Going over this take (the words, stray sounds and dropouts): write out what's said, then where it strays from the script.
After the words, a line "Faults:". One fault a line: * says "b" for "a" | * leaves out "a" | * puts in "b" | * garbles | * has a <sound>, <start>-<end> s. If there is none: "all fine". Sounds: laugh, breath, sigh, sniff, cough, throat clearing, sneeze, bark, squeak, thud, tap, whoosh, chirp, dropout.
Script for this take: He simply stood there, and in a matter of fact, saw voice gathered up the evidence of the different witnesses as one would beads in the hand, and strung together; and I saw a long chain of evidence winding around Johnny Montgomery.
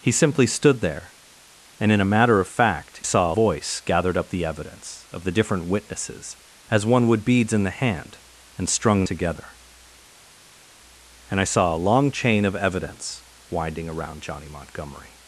He simply stood there, and in a matter of fact, saw voice gathered up the evidence of the different witnesses as one would beads in the hand, and strung together; and I saw a long chain of evidence winding around Johnny Montgomery.
Faults:
all fine